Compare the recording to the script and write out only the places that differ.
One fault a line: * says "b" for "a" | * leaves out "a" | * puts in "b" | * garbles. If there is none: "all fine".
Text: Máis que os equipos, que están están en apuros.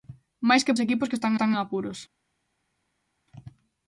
all fine